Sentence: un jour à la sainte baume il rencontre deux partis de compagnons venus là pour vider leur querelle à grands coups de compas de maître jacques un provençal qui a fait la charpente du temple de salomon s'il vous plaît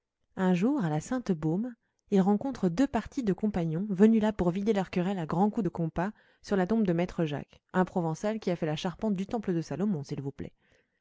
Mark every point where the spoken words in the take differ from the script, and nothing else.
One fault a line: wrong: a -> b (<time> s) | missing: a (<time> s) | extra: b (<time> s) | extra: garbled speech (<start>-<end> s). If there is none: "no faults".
extra: sur la tombe (6.4 s)